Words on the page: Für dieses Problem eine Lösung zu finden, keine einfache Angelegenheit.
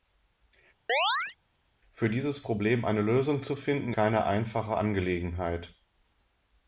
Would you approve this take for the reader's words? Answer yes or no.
yes